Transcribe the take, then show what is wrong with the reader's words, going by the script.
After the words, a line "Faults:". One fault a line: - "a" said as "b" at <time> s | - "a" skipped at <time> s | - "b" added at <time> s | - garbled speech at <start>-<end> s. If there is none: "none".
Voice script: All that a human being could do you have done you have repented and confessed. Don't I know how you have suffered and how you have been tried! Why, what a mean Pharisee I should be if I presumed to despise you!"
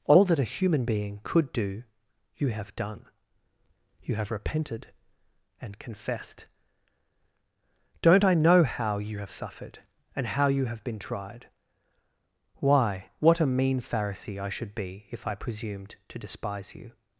All that a human being could do you have done you have repented and confessed. Don't I know how you have suffered and how you have been tried! Why, what a mean Pharisee I should be if I presumed to despise you!"
Faults:
none